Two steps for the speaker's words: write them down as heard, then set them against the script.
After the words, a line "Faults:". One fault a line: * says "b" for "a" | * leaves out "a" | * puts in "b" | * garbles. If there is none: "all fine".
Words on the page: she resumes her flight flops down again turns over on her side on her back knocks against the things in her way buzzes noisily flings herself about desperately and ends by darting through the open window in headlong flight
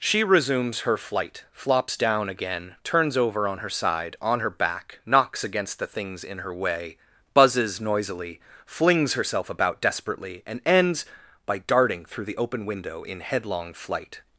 she resumes her flight flops down again turns over on her side on her back knocks against the things in her way buzzes noisily flings herself about desperately and ends by darting through the open window in headlong flight
Faults:
all fine